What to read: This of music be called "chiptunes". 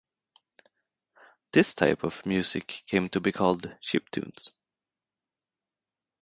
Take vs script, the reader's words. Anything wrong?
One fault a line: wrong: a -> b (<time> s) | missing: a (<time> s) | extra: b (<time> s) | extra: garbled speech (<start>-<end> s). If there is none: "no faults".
extra: type (1.8 s)
extra: came to (2.9 s)